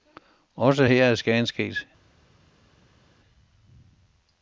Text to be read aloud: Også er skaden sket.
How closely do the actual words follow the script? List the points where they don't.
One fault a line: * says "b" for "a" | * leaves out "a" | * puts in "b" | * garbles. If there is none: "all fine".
* puts in "her"